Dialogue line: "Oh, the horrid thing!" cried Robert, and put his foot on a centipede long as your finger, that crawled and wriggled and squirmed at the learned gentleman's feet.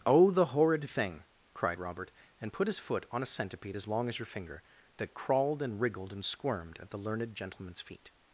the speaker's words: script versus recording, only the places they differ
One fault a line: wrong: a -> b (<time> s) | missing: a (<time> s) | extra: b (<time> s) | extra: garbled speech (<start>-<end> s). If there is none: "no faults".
extra: as (3.7 s)